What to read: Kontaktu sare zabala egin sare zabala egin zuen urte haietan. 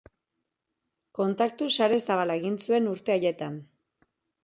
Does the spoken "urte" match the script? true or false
true